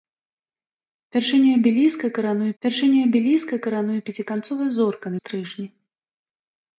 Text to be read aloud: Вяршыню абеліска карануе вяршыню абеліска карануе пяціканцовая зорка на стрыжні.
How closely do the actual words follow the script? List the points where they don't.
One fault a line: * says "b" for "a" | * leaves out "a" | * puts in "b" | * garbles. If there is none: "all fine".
all fine